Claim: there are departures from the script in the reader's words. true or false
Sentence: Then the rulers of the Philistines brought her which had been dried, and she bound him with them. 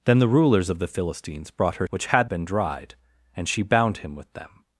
false